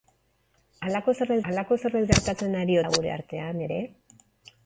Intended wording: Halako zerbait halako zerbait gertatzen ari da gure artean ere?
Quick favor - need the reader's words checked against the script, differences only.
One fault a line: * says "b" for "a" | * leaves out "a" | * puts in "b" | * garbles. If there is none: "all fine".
all fine